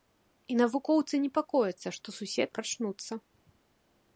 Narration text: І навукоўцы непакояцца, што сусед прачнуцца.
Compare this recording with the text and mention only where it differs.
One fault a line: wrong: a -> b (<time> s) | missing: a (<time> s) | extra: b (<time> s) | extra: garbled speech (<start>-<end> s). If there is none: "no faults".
no faults